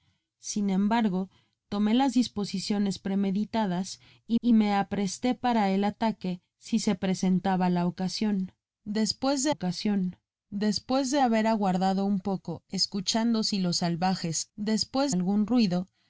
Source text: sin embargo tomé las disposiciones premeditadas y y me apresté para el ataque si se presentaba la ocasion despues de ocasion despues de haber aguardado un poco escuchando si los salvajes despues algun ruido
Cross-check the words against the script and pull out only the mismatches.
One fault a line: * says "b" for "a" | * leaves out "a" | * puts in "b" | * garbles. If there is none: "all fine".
all fine